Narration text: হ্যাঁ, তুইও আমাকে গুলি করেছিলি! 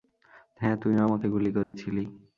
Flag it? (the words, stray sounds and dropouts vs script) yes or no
yes